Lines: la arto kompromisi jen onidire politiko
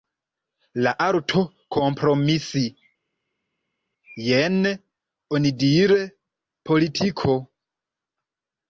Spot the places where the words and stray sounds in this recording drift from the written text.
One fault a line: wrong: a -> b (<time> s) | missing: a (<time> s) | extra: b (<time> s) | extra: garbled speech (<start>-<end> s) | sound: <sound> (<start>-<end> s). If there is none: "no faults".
no faults